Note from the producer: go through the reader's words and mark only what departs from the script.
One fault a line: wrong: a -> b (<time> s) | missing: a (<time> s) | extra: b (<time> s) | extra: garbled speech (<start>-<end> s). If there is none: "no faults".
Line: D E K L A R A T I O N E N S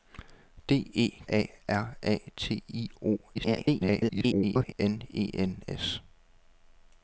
missing: K L (1.2 s)
extra: garbled speech (3.3-4.7 s)